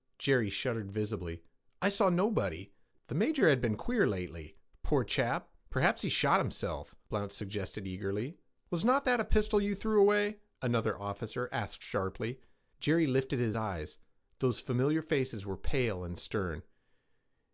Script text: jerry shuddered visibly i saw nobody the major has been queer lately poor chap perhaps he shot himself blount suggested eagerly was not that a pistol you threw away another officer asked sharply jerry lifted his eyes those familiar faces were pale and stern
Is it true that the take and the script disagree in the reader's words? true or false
false